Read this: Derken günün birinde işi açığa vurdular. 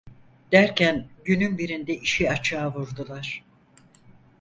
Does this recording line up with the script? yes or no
yes